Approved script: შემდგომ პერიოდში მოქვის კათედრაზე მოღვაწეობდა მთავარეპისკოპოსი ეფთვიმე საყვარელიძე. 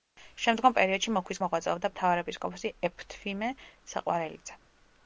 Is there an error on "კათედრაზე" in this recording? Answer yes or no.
yes